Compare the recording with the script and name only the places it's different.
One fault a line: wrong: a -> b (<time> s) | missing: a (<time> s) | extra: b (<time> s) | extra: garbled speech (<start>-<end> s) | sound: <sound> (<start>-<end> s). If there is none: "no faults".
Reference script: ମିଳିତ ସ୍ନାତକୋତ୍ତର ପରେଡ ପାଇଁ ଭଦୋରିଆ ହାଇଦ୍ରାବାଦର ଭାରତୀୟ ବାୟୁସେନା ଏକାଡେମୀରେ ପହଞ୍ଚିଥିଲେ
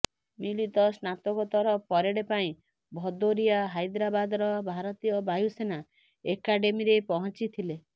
no faults